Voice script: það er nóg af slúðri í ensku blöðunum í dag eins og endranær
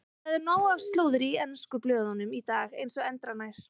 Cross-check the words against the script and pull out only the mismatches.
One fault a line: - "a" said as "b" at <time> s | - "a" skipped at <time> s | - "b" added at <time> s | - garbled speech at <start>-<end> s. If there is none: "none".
none